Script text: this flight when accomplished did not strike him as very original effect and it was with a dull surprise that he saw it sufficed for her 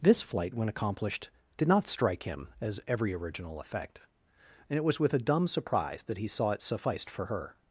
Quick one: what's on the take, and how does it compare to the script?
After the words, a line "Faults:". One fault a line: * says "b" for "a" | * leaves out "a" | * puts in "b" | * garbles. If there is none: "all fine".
this flight when accomplished did not strike him as every original effect and it was with a dumb surprise that he saw it sufficed for her
Faults:
* says "every" for "very"
* says "dumb" for "dull"